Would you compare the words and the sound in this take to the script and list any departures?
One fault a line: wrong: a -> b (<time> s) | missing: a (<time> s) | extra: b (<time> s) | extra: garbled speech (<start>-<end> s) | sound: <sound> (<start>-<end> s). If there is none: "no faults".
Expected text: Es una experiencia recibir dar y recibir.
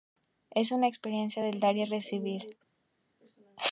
wrong: recibir -> del (1.4 s)